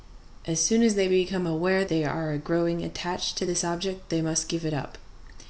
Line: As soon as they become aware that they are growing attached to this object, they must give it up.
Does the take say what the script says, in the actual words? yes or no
no